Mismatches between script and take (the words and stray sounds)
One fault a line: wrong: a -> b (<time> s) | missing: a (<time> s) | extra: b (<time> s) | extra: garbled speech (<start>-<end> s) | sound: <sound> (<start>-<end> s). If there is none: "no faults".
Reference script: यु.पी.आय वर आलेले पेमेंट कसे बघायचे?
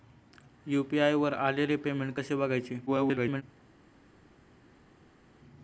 extra: garbled speech (2.9-3.4 s)